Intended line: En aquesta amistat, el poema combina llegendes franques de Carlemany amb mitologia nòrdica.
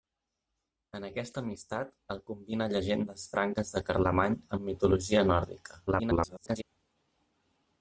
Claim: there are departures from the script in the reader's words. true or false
true